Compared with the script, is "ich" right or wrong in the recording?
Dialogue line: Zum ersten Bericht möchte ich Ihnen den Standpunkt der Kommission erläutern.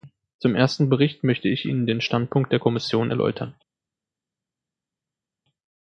right